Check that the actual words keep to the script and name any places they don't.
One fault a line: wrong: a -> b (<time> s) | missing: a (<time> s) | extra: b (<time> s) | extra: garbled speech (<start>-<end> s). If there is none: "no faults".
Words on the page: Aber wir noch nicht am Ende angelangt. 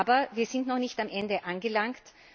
extra: sind (0.5 s)